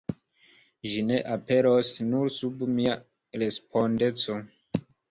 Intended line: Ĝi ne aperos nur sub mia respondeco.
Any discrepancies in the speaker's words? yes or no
no